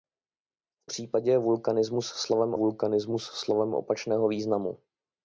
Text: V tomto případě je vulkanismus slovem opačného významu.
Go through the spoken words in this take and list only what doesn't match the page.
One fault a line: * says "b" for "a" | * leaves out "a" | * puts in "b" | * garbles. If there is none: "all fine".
* leaves out "tomto"
* puts in "vulkanismus slovem"